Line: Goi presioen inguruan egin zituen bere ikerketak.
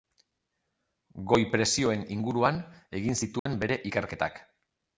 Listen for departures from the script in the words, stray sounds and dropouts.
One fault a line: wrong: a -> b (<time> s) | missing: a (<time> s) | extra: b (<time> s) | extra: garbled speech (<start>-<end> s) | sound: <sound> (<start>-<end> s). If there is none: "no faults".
sound: dropout (3.4-3.5 s)